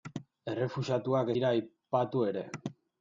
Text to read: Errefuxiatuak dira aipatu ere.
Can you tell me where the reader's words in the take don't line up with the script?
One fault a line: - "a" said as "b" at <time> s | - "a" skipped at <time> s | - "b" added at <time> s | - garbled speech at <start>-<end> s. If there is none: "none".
none